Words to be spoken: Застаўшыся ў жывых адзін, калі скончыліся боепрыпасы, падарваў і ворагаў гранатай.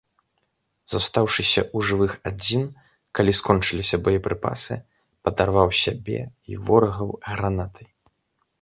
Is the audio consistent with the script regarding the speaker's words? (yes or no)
no